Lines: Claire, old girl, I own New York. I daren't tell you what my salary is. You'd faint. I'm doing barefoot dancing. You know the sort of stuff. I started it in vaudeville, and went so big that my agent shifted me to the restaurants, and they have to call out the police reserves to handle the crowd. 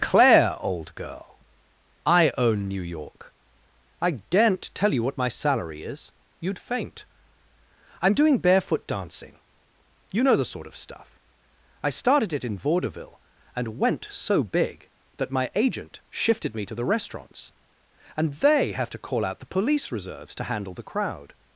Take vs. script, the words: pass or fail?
pass